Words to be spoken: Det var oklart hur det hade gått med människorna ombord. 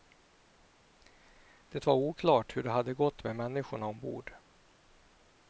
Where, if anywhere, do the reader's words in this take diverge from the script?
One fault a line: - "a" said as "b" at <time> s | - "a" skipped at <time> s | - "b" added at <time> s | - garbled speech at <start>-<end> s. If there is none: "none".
none